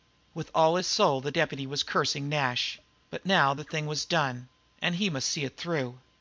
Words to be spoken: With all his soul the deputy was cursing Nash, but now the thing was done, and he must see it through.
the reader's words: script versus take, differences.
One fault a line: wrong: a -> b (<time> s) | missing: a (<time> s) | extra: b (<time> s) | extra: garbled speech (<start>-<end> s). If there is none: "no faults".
no faults